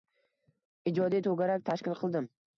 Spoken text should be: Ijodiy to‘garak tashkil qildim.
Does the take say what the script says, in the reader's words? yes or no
yes